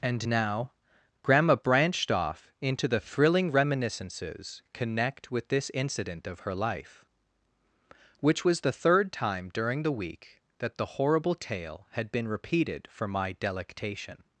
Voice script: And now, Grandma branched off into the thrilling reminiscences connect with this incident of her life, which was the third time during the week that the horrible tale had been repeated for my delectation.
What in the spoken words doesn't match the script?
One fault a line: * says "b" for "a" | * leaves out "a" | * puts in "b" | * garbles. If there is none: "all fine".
all fine